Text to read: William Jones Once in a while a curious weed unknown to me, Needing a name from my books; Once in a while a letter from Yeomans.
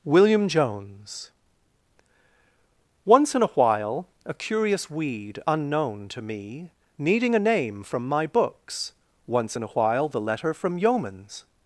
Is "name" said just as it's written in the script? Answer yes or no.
yes